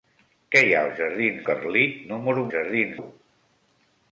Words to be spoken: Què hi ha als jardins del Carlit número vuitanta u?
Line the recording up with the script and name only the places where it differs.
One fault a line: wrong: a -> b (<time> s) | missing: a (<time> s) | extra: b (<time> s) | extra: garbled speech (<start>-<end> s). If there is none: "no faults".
missing: del (1.4 s)
wrong: vuitanta -> jardins (2.6 s)